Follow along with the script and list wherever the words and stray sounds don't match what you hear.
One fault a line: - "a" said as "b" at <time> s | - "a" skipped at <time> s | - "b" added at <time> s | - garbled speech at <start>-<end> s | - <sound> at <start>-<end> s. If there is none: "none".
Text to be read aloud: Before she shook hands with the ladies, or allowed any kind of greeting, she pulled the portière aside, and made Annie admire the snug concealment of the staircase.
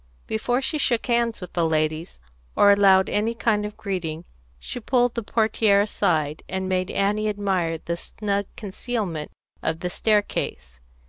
none